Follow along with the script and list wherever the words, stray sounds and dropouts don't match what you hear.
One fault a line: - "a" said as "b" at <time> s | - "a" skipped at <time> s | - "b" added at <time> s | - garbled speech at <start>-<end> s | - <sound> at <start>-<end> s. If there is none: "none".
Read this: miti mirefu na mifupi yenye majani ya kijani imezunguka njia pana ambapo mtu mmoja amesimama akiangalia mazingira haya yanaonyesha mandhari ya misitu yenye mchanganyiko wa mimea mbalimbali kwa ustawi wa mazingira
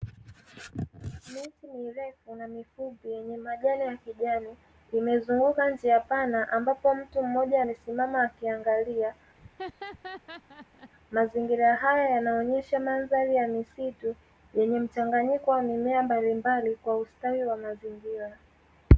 - laugh at 9.3-10.9 s